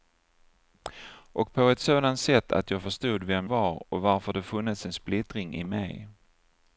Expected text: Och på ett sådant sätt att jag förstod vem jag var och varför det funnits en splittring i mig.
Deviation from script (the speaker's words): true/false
true